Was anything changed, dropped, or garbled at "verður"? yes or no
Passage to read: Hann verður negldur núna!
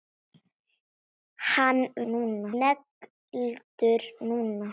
yes